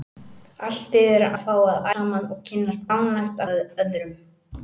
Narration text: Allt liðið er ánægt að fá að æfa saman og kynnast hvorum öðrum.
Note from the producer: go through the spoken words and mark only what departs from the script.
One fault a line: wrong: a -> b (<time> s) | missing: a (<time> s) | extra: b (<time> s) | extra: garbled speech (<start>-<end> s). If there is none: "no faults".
missing: ánægt (1.4 s)
missing: æfa (1.9 s)
wrong: hvorum -> ánægt (2.9 s)